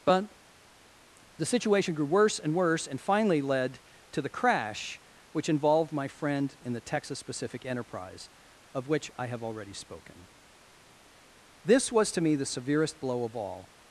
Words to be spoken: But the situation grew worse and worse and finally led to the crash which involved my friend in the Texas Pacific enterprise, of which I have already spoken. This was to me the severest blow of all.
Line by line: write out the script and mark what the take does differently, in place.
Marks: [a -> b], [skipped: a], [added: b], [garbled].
But the situation grew worse and worse and finally led to the crash which involved my friend in the Texas Pacific enterprise, of which I have already spoken. This was to me the severest blow of all.